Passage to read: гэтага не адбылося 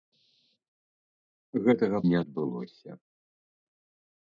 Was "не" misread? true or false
false